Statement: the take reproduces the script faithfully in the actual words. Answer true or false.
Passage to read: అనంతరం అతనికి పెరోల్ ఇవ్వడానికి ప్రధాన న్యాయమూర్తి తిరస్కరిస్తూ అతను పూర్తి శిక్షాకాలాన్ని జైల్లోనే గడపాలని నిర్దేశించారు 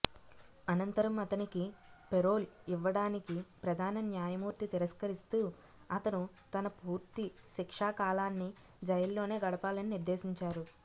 false